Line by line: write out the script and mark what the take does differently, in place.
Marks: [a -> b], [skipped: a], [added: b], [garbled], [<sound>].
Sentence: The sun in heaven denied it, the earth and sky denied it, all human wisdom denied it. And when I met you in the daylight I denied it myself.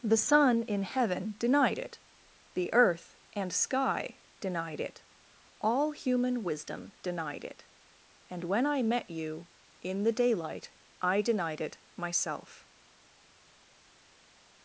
The sun in heaven denied it, the earth and sky denied it, all human wisdom denied it. And when I met you in the daylight I denied it myself.